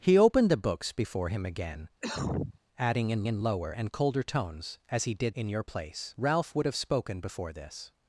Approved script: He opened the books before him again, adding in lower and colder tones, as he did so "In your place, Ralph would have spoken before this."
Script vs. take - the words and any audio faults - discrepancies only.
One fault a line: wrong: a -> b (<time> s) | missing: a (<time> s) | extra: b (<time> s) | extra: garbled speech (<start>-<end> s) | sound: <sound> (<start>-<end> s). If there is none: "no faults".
sound: cough (2.0-2.6 s)
extra: in (3.3 s)
missing: so (5.4 s)